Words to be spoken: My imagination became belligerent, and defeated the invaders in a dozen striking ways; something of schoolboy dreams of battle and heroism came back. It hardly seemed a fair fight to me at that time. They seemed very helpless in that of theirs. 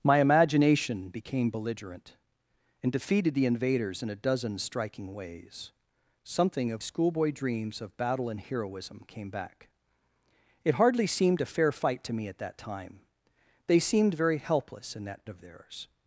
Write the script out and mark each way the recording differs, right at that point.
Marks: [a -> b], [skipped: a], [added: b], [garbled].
My imagination became belligerent, and defeated the invaders in a dozen striking ways; something of schoolboy dreams of battle and heroism came back. It hardly seemed a fair fight to me at that time. They seemed very helpless in that of theirs.